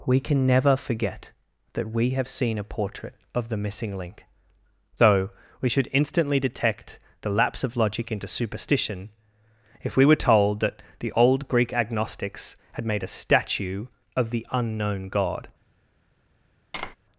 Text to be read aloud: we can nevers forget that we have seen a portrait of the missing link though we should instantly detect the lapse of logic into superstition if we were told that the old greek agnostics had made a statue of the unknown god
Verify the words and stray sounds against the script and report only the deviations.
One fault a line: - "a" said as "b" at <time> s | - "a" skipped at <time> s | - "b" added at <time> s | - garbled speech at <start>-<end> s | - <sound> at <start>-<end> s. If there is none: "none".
- "nevers" said as "never" at 0.5 s
- tap at 16.7-17.0 s